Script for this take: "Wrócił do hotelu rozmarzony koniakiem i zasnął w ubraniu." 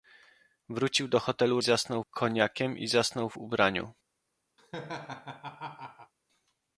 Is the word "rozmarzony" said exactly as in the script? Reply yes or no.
no